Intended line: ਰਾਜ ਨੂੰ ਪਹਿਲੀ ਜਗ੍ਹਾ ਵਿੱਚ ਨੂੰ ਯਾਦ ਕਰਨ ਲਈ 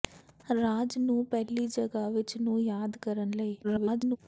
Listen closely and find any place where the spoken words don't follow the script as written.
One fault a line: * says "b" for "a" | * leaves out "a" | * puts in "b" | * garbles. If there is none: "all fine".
* garbles